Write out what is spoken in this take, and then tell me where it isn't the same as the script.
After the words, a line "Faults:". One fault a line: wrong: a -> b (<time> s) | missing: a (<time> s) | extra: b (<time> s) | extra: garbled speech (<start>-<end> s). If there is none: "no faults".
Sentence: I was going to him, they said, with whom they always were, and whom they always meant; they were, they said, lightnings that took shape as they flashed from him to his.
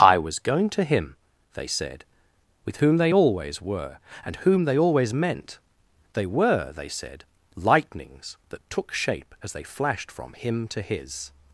I was going to him, they said, with whom they always were, and whom they always meant; they were, they said, lightnings that took shape as they flashed from him to his.
Faults:
no faults